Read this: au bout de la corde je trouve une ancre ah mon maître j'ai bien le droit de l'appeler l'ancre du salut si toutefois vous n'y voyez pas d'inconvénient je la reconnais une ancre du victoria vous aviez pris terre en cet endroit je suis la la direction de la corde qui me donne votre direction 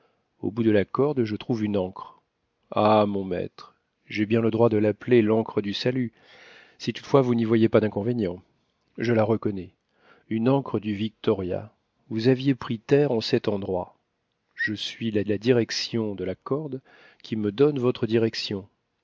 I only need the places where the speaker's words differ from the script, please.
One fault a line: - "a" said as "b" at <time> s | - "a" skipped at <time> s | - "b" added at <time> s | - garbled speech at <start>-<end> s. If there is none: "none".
none